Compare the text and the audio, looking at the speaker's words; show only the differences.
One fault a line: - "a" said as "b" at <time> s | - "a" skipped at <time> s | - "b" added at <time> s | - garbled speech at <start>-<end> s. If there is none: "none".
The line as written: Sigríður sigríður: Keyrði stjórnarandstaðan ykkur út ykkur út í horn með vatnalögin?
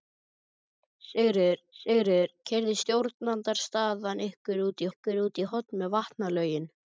none